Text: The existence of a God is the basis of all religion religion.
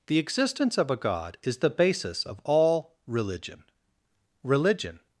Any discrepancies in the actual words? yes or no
no